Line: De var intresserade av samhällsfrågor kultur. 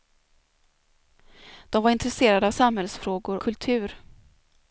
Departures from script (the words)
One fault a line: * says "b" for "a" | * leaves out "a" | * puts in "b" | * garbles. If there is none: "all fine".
all fine